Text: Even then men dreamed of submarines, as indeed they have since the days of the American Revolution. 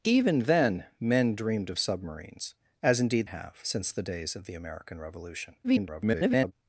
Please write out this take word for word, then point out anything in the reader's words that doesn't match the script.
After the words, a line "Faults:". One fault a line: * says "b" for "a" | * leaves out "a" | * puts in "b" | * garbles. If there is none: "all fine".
Even then men dreamed of submarines, as indeed have since the days of the American Revolution. [garbled]
Faults:
* leaves out "they"
* garbles